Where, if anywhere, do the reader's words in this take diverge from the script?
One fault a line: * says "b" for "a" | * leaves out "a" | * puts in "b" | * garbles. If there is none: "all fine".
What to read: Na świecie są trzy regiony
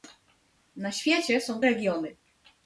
* leaves out "trzy"